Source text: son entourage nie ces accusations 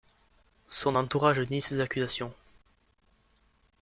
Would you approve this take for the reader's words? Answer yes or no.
yes